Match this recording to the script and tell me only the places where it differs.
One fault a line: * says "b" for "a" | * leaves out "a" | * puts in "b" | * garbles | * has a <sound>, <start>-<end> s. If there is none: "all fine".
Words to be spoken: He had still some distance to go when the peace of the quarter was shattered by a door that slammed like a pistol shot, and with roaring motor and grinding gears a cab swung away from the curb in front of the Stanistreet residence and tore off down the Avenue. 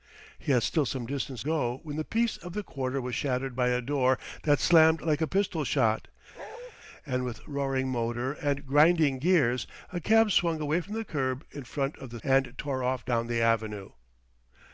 * leaves out "to"
* has a bark, 6.3-6.7 s
* leaves out "Stanistreet residence"